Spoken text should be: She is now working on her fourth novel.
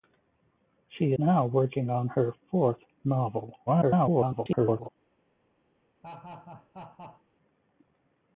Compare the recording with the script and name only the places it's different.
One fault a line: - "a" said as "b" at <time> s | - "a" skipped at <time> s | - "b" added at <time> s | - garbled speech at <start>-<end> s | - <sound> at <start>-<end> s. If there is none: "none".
- "is" skipped at 1.1 s
- garbled speech at 3.7-4.9 s
- laugh at 6.0-7.2 s